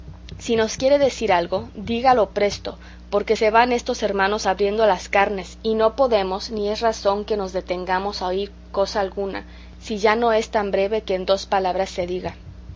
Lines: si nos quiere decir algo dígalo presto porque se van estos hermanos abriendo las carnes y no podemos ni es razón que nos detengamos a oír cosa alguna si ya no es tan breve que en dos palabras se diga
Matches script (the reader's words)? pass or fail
pass